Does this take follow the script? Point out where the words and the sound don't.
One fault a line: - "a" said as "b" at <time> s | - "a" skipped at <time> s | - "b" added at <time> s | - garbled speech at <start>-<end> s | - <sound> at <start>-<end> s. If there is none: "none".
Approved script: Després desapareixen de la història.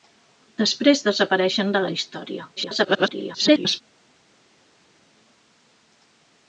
- garbled speech at 2.6-3.8 s